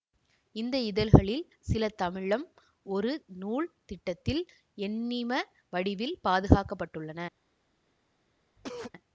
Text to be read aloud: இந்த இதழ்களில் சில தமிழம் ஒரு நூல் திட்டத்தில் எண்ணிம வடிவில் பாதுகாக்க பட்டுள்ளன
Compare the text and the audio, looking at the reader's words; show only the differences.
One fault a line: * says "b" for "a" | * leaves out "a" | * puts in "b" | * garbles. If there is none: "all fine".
all fine